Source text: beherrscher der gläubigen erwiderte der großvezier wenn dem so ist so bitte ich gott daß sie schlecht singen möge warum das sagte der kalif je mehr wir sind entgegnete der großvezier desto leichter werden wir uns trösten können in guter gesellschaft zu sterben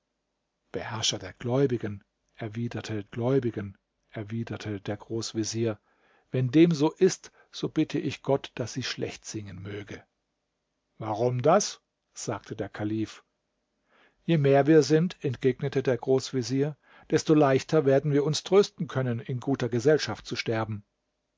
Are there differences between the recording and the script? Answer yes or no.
yes